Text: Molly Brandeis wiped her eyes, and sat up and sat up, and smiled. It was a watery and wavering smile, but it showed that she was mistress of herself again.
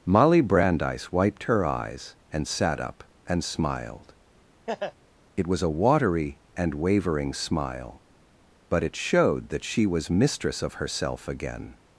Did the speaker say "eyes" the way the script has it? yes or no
yes